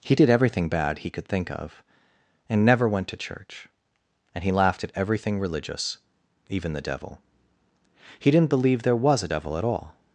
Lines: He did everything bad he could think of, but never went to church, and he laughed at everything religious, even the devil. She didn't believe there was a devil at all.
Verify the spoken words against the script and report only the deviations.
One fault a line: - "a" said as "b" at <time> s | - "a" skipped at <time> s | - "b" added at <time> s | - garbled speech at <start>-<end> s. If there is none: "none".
- "but" said as "and" at 2.5 s
- "She" said as "He" at 8.2 s